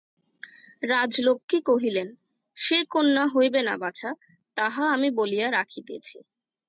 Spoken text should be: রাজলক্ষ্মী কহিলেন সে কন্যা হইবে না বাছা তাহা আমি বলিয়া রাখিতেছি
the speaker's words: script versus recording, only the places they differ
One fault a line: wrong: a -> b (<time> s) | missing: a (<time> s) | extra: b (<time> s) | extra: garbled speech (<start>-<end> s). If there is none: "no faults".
no faults